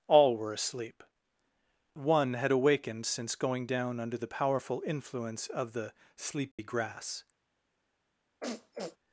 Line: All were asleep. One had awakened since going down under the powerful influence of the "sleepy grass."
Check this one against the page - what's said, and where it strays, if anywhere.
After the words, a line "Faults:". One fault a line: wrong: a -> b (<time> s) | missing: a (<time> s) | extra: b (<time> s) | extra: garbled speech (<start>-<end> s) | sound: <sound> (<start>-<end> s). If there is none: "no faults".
All were asleep. One had awakened since going down under the powerful influence of the "sleepy grass."
Faults:
sound: dropout (6.5-6.6 s)
sound: sniff (8.4-9.0 s)